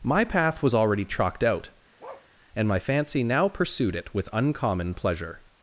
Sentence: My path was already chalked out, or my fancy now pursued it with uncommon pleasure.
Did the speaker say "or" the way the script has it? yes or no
no